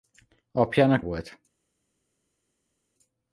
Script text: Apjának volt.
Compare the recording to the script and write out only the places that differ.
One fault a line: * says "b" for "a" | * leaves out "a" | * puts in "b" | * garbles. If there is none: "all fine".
all fine